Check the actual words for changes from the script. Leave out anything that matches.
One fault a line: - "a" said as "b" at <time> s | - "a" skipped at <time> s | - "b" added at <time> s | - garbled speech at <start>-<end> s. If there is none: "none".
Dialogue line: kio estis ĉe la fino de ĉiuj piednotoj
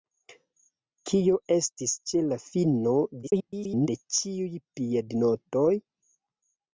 - garbled speech at 3.2-3.9 s